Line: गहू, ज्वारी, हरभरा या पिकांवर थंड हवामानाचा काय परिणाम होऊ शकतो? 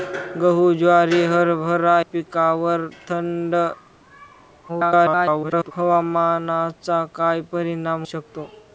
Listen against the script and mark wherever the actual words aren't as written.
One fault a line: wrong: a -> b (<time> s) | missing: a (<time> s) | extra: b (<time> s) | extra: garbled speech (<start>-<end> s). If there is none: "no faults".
missing: या (2.0 s)
extra: garbled speech (4.7-5.7 s)
missing: होऊ (8.1 s)